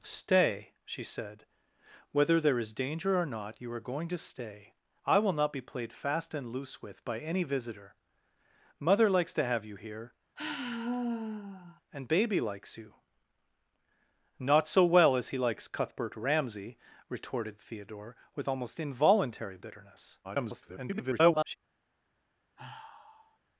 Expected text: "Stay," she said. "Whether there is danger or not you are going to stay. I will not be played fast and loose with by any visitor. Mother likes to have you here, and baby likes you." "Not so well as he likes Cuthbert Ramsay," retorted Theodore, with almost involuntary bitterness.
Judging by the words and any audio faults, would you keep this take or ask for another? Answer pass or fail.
fail